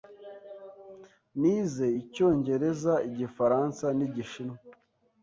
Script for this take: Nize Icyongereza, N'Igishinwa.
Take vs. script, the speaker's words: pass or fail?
fail